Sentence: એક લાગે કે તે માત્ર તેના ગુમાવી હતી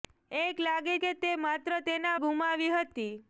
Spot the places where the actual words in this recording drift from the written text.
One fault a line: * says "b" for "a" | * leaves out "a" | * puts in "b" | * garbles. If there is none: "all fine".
all fine